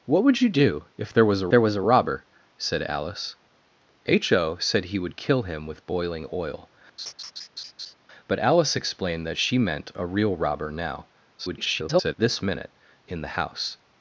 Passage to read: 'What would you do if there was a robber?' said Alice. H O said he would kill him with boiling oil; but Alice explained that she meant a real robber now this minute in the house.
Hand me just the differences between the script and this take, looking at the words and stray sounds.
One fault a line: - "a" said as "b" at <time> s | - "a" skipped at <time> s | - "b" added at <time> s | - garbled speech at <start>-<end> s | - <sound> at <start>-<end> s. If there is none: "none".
- "there was a" added at 1.5 s
- laugh at 7.0-7.9 s
- garbled speech at 11.4-12.1 s